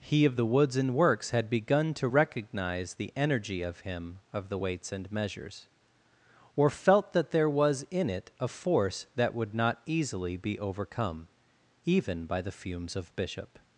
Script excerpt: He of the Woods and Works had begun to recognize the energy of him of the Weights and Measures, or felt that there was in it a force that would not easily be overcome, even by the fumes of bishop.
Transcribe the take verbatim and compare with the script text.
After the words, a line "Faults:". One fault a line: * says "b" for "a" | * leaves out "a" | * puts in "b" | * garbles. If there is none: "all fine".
He of the Woods and Works had begun to recognize the energy of him of the Weights and Measures, or felt that there was in it a force that would not easily be overcome, even by the fumes of bishop.
Faults:
all fine